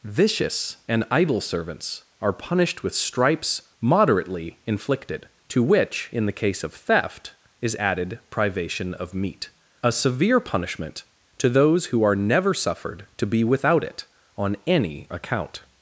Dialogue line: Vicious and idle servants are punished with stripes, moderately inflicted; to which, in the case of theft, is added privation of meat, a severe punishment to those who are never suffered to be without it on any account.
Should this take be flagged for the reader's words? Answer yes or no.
no